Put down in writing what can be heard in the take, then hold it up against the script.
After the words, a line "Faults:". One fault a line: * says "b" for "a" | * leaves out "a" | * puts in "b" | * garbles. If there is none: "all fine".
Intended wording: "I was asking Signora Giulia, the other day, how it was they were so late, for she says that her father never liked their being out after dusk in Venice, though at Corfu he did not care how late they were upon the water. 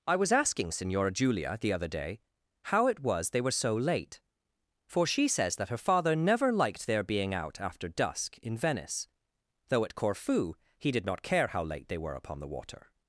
"I was asking Signora Giulia, the other day, how it was they were so late, for she says that her father never liked their being out after dusk in Venice, though at Corfu he did not care how late they were upon the water.
Faults:
all fine